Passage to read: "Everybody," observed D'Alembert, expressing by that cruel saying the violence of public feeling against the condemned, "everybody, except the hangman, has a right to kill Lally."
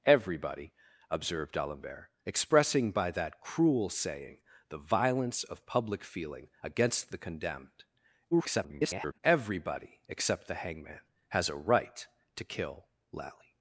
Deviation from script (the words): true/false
true